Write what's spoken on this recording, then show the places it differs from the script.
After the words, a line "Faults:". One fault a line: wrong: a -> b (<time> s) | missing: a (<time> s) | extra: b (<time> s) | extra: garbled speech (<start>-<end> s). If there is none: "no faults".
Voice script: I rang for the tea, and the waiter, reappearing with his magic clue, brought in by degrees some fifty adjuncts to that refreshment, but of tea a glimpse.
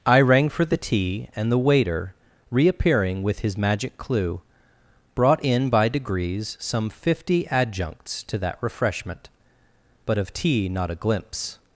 I rang for the tea, and the waiter, reappearing with his magic clue, brought in by degrees some fifty adjuncts to that refreshment, but of tea not a glimpse.
Faults:
extra: not (10.7 s)